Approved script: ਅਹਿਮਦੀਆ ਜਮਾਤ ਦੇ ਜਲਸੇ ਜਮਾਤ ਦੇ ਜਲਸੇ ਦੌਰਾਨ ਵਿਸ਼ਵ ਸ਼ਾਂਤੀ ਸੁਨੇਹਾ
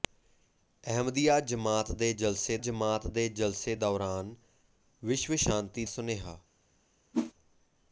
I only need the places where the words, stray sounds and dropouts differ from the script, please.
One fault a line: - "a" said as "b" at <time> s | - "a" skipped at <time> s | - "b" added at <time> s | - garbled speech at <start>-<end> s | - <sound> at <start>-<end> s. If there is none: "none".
- whoosh at 7.1-7.3 s